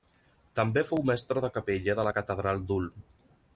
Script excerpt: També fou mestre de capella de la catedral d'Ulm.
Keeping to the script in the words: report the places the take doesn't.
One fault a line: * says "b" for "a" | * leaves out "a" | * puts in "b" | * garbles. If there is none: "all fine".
all fine